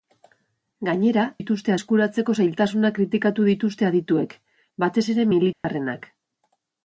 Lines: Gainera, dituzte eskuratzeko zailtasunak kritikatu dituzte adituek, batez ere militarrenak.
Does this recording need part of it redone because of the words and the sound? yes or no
yes